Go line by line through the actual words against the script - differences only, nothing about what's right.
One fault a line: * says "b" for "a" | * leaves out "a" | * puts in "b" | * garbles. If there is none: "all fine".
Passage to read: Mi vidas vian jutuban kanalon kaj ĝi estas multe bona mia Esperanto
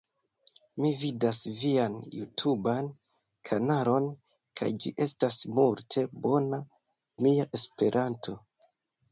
all fine